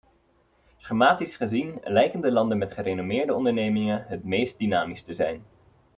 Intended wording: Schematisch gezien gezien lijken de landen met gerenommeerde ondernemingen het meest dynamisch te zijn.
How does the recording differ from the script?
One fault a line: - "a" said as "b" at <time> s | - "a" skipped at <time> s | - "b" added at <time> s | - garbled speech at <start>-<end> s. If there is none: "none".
- "gezien" skipped at 1.8 s